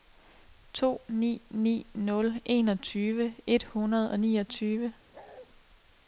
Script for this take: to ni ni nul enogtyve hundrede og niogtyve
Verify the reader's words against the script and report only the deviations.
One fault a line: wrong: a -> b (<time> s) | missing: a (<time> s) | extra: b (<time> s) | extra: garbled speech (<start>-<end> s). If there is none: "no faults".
extra: et (3.5 s)